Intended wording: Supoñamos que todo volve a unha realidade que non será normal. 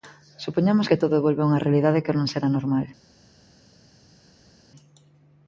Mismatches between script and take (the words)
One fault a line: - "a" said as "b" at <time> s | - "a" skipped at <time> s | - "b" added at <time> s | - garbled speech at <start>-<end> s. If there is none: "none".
none